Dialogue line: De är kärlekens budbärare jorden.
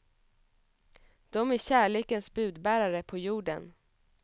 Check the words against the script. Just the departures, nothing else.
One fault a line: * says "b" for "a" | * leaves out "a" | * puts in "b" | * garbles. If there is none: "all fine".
* puts in "på"